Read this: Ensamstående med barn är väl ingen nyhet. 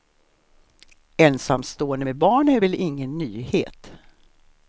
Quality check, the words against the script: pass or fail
pass